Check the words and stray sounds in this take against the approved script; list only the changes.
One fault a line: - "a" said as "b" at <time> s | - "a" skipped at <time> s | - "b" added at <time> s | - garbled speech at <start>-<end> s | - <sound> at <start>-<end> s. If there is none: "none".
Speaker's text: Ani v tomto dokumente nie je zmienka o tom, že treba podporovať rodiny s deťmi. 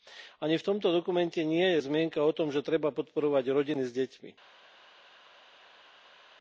none